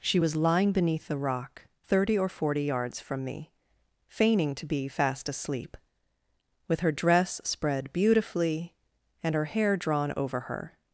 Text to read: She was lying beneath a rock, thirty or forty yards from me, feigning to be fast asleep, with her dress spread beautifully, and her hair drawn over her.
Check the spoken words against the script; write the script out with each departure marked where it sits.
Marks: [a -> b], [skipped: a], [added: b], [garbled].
She was lying beneath [a -> the] rock, thirty or forty yards from me, feigning to be fast asleep, with her dress spread beautifully, and her hair drawn over her.